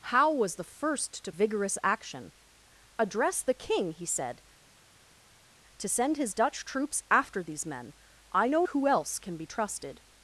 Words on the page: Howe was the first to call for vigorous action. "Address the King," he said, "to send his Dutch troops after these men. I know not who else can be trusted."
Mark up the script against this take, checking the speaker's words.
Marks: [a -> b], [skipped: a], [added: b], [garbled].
Howe was the first to [skipped: call for] vigorous action. "Address the King," he said, "to send his Dutch troops after these men. I know [skipped: not] who else can be trusted."